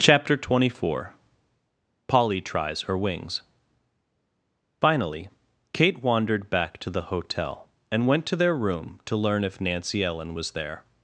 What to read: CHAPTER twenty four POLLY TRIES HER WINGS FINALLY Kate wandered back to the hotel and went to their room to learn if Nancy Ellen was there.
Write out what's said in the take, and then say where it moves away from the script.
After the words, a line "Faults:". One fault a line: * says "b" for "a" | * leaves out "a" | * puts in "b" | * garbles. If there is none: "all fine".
CHAPTER twenty four POLLY TRIES HER WINGS FINALLY Kate wandered back to the hotel and went to their room to learn if Nancy Ellen was there.
Faults:
all fine